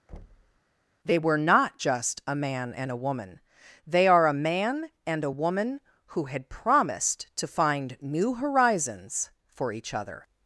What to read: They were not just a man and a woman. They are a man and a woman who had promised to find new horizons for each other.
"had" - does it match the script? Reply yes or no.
yes